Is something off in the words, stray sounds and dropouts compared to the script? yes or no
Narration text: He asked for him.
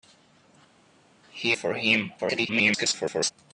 yes